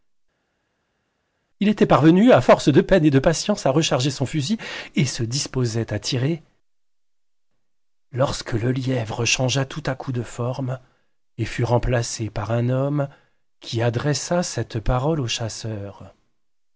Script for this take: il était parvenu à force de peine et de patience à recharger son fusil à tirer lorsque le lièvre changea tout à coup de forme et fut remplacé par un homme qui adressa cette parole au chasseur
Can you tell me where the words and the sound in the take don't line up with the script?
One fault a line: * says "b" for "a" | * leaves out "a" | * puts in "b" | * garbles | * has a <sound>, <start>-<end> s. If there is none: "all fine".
* puts in "et se disposait"